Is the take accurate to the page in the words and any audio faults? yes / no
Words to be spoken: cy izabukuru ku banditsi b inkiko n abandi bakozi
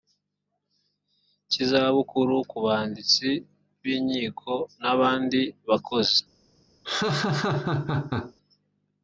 no